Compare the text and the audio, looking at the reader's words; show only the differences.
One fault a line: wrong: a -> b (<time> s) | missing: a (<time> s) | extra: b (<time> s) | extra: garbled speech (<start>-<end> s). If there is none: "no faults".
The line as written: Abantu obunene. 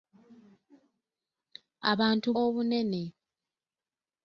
no faults